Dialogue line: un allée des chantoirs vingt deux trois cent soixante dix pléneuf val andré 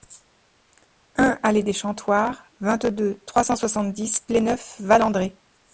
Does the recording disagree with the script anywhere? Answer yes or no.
no